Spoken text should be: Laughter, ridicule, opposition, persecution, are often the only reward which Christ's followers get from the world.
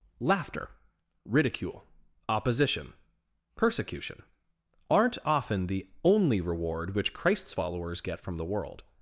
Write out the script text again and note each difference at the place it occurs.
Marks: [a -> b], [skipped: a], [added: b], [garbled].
Laughter, ridicule, opposition, persecution, [are -> aren't] often the only reward which Christ's followers get from the world.